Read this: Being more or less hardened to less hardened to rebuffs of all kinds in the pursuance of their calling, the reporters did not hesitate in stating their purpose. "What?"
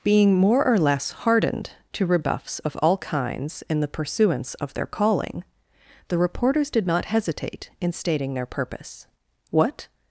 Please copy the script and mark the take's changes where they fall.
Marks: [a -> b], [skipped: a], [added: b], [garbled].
Being more or less hardened to [skipped: less hardened to] rebuffs of all kinds in the pursuance of their calling, the reporters did not hesitate in stating their purpose. "What?"